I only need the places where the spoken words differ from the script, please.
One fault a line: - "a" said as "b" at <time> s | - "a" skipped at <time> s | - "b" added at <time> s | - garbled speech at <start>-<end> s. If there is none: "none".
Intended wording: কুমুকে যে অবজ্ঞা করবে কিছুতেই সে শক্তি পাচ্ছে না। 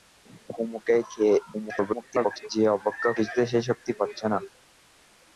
- garbled speech at 1.5-2.5 s
- "করবে" skipped at 3.1 s